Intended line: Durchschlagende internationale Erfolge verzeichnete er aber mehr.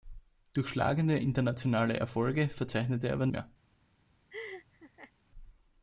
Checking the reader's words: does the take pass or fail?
pass